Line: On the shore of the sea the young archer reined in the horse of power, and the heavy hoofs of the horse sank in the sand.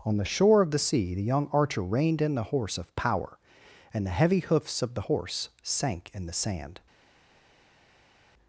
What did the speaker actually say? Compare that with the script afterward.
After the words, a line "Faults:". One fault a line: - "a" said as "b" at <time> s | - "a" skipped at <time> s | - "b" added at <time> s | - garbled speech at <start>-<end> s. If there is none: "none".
On the shore of the sea the young archer reined in the horse of power, and the heavy hoofs of the horse sank in the sand.
Faults:
none